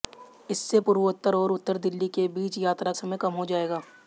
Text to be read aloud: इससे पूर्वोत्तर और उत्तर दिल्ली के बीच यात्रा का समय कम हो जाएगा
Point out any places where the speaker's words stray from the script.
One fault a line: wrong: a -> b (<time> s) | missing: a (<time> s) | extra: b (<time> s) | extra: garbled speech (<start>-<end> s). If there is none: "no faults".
missing: का (2.9 s)